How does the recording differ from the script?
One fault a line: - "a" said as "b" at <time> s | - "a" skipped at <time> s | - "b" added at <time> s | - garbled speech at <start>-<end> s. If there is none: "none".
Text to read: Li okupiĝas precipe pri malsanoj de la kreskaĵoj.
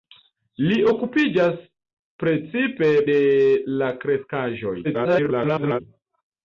- "pri malsanoj" skipped at 2.9 s
- garbled speech at 4.8-5.8 s